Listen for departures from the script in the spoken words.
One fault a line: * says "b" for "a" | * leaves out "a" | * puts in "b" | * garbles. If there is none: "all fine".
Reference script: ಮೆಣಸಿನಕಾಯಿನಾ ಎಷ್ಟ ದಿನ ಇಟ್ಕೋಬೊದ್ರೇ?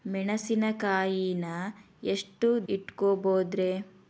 * leaves out "ದಿನ"